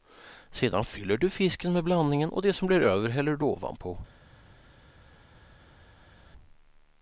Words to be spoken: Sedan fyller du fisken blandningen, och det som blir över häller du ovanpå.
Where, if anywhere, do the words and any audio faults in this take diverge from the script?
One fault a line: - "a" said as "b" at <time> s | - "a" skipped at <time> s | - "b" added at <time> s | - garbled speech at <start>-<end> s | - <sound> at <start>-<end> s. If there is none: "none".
- "med" added at 1.7 s